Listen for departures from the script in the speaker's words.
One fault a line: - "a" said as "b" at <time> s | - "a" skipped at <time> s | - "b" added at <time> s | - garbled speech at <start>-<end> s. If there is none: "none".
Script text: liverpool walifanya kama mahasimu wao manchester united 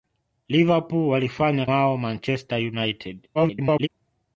- "kama mahasimu" skipped at 1.6 s
- garbled speech at 3.3-3.9 s